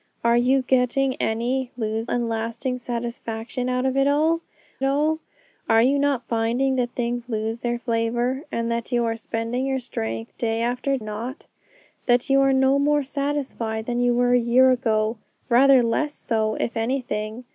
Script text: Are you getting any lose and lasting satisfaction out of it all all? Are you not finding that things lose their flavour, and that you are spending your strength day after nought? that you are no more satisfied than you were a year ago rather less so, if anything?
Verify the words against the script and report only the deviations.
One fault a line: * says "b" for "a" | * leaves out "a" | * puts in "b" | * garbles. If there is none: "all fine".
all fine